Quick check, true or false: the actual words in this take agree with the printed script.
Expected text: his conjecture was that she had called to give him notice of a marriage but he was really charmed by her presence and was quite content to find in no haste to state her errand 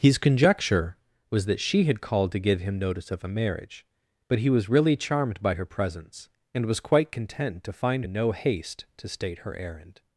true